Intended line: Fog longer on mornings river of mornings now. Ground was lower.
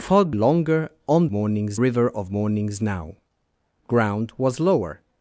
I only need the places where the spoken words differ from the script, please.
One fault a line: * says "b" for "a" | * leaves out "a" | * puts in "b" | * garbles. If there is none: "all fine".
all fine